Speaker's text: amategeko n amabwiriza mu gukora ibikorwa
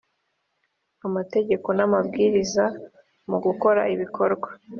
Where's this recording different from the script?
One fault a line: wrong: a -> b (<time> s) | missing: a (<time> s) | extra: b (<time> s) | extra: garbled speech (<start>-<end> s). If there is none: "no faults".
no faults